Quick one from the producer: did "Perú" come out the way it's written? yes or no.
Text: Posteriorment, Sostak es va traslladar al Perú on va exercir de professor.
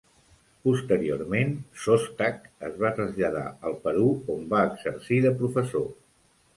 yes